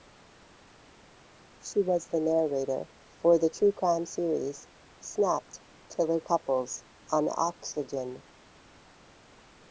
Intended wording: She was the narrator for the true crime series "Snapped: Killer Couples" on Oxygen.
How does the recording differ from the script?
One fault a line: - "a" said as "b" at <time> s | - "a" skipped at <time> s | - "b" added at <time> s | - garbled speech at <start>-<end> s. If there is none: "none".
none